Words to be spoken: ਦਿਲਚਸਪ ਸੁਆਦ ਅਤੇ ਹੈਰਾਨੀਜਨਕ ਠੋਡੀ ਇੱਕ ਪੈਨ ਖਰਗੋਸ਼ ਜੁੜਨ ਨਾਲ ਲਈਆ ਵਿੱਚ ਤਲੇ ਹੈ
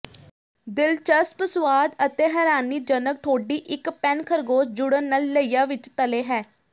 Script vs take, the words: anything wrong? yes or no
no